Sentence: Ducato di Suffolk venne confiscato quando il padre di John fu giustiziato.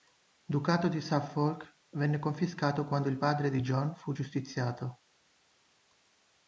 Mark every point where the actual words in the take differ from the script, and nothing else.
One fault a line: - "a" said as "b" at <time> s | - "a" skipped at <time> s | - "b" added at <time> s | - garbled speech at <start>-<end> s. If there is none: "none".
none